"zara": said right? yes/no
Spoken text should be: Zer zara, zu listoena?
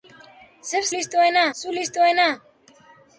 no